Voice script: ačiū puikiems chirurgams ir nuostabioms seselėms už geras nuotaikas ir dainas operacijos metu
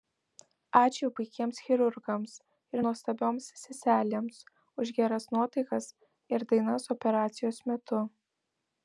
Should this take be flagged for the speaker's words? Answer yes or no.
no